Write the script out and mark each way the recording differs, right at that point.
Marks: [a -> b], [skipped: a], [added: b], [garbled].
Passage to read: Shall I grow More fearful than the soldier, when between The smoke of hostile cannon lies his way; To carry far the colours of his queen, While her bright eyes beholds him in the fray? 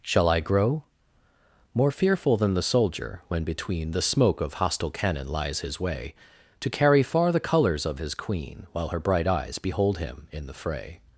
Shall I grow More fearful than the soldier, when between The smoke of hostile cannon lies his way; To carry far the colours of his queen, While her bright eyes [beholds -> behold] him in the fray?